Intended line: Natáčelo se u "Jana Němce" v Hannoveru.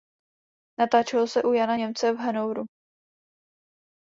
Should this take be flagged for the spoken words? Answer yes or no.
no